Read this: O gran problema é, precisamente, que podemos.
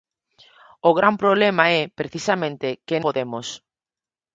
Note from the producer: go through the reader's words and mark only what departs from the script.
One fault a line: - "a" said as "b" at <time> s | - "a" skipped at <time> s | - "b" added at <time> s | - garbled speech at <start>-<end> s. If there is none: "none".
none